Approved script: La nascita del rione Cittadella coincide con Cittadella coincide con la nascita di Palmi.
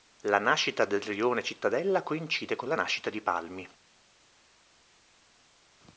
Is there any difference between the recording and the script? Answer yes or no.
yes